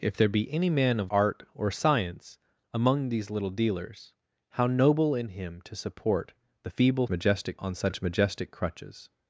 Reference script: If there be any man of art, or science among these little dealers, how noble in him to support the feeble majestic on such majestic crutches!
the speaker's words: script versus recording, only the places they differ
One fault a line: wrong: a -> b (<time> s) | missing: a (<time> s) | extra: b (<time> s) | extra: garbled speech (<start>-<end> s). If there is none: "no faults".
no faults